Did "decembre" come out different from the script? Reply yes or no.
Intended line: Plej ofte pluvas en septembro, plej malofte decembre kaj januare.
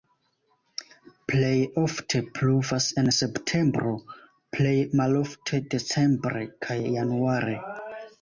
no